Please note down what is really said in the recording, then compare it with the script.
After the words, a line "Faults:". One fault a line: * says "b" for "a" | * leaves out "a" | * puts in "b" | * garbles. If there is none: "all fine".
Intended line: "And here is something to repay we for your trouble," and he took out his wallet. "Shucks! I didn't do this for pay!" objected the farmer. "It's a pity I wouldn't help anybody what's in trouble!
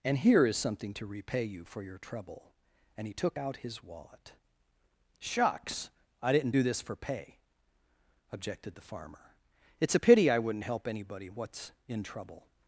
"And here is something to repay you for your trouble," and he took out his wallet. "Shucks! I didn't do this for pay!" objected the farmer. "It's a pity I wouldn't help anybody what's in trouble!
Faults:
* says "you" for "we"